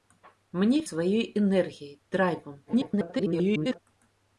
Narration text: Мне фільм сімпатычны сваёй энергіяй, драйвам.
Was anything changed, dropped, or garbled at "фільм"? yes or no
yes